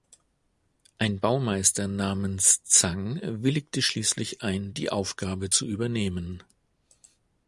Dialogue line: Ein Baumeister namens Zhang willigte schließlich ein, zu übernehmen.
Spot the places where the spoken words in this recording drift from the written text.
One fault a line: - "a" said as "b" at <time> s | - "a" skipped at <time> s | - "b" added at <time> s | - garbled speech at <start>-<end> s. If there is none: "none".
- "die Aufgabe" added at 4.7 s